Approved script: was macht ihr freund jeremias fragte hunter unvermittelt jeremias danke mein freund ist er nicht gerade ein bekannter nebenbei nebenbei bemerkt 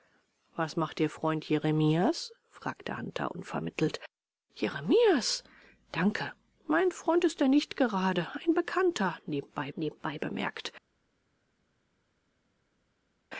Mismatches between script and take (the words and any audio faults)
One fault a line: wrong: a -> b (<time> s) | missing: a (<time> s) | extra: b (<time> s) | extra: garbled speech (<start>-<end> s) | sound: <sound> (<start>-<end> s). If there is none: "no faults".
no faults